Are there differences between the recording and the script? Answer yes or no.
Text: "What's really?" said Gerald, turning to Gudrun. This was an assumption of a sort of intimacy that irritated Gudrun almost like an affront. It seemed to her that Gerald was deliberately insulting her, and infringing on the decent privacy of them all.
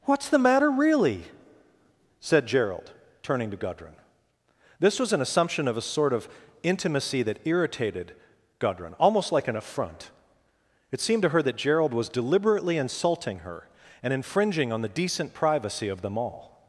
yes